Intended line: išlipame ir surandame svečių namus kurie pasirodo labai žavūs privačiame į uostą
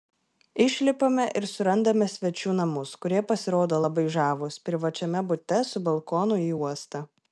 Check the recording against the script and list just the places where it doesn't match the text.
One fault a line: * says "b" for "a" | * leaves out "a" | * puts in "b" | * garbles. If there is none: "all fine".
* puts in "bute su balkonu"